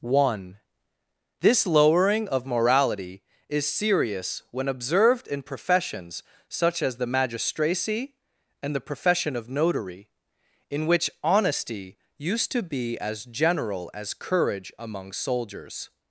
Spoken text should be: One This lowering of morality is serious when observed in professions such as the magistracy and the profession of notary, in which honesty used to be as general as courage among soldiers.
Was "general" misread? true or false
false